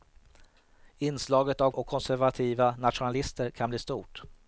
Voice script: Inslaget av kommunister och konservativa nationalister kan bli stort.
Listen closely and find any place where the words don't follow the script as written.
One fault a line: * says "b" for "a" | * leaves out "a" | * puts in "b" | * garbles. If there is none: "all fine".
* leaves out "kommunister"